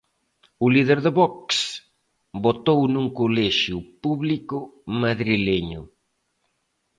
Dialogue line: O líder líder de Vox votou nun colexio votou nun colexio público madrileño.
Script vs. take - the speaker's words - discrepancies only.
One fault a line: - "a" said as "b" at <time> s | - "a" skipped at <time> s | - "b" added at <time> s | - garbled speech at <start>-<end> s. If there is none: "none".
- "líder" skipped at 1.0 s
- "votou nun colexio" skipped at 3.8 s